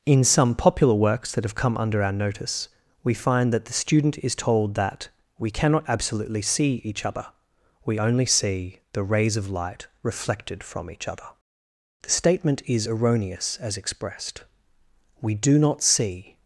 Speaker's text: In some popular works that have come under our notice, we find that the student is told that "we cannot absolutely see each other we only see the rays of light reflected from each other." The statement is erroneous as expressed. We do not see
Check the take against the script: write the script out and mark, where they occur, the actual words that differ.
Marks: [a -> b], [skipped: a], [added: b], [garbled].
In some popular works that have come under our notice, we find that the student is told that "we cannot absolutely see each other we only see the rays of light reflected from each other." The statement is erroneous as expressed. We do not see